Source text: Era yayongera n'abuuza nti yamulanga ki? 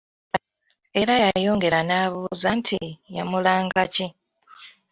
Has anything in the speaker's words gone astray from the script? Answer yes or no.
no